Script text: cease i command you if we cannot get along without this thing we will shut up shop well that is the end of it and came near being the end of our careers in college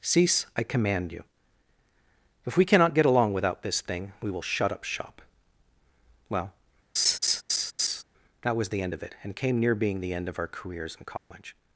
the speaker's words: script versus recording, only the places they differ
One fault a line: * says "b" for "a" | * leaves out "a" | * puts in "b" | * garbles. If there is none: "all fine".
* says "was" for "is"